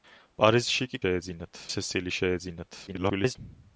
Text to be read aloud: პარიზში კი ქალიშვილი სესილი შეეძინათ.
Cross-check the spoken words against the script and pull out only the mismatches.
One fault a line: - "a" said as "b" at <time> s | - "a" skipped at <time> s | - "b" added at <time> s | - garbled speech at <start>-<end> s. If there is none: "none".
- "ქალიშვილი" said as "შეეძინათ" at 1.0 s
- garbled speech at 2.9-3.4 s